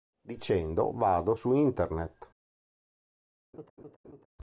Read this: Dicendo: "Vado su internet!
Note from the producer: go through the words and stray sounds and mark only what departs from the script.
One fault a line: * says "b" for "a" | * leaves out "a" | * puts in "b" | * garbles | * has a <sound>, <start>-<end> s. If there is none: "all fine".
* has a laugh, 3.5-4.3 s